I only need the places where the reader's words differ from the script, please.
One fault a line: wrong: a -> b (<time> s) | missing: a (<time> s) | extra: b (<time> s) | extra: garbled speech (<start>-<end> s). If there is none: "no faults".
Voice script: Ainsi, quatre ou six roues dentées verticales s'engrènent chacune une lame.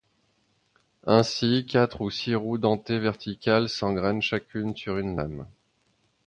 extra: sur (4.7 s)